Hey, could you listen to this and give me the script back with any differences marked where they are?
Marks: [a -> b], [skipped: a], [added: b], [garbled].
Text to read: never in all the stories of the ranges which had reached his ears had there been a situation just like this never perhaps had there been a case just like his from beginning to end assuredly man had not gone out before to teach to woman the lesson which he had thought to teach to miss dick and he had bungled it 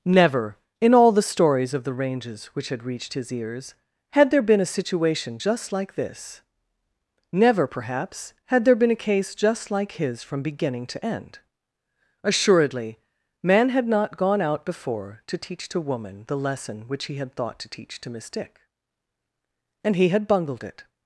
never in all the stories of the ranges which had reached his ears had there been a situation just like this never perhaps had there been a case just like his from beginning to end assuredly man had not gone out before to teach to woman the lesson which he had thought to teach to miss dick and he had bungled it